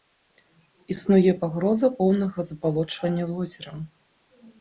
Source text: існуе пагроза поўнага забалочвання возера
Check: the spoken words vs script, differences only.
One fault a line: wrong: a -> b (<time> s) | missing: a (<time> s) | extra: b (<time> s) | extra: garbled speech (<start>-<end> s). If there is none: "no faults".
no faults